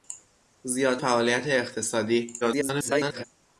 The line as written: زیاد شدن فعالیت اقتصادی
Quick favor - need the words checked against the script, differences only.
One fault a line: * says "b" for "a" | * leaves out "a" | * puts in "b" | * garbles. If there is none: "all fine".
* leaves out "شدن"
* garbles